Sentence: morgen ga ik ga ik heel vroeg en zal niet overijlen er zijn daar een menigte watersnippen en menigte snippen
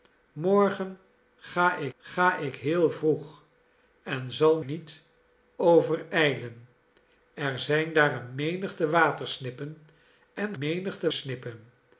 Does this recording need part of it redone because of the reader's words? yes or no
no